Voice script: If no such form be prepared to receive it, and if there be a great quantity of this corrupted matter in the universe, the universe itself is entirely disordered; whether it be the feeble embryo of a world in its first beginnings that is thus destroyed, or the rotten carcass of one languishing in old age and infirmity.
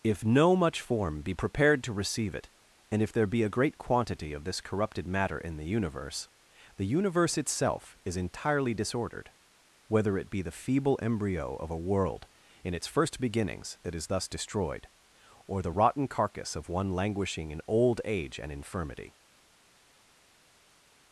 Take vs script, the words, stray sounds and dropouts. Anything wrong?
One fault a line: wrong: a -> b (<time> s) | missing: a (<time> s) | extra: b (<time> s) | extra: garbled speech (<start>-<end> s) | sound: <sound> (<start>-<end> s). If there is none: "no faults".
wrong: such -> much (0.6 s)